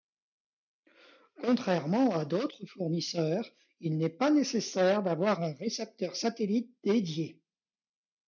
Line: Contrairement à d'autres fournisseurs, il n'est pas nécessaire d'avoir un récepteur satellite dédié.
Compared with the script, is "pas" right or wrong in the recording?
right